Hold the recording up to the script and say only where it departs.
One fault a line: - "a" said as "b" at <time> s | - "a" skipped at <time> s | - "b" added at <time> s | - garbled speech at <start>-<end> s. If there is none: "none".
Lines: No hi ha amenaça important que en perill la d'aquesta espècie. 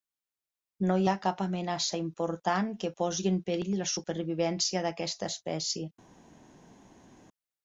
- "cap" added at 1.2 s
- "posi" added at 3.0 s
- "supervivència" added at 3.9 s